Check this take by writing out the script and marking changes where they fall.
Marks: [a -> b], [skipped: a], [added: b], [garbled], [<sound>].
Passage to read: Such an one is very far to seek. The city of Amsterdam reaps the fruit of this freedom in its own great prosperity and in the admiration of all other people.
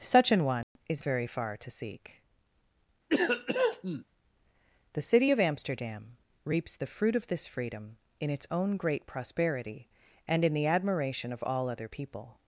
Such an one [dropout] is very far to seek. [cough] The city of Amsterdam reaps the fruit of this freedom in its own great prosperity and in the admiration of all other people.